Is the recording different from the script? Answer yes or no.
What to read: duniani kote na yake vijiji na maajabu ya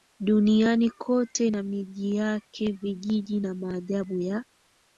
yes